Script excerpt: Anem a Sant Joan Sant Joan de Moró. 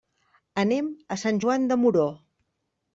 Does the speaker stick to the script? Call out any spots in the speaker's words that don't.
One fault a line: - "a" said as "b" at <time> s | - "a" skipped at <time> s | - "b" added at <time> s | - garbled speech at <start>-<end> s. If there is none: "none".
- "Sant Joan" skipped at 1.7 s